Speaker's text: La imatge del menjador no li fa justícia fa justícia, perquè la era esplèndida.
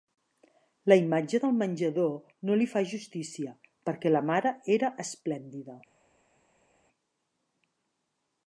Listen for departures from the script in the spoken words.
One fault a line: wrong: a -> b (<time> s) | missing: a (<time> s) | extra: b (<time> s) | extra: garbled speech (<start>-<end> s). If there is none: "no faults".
missing: fa justícia (3.5 s)
extra: mare (4.3 s)